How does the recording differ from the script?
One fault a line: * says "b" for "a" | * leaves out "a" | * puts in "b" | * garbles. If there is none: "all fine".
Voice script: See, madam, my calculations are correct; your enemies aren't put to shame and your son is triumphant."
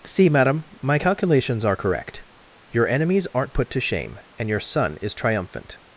all fine